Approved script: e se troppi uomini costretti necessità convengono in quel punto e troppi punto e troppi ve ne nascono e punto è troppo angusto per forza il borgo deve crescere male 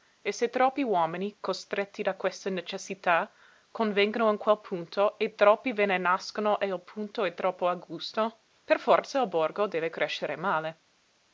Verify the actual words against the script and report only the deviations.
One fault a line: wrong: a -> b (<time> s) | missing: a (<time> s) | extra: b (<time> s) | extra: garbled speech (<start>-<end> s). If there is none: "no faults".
extra: da questa (2.0 s)
missing: punto e troppi (5.7 s)
extra: il (6.7 s)